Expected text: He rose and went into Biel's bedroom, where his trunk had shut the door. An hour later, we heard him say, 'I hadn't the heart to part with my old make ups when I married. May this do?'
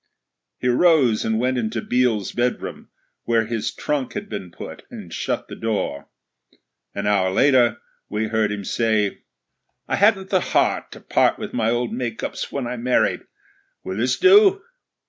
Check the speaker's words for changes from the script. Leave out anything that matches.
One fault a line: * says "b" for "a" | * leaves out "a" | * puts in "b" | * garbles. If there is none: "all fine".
* puts in "been put and"
* says "Will" for "May"